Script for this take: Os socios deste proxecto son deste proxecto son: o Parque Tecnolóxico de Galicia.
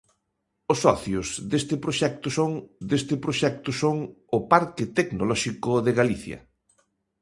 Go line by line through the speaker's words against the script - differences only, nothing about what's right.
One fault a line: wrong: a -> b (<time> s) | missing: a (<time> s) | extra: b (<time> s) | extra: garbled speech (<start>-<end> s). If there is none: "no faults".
no faults